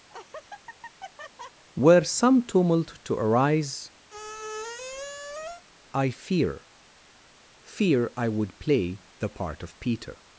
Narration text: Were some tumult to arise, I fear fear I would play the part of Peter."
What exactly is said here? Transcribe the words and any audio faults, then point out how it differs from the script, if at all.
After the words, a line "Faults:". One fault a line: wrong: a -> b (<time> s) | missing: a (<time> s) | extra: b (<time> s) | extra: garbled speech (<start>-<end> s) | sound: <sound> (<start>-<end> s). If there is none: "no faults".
Were some tumult to arise, I fear fear I would play the part of Peter."
Faults:
sound: laugh (0.1-1.6 s)
sound: squeak (4.1-5.6 s)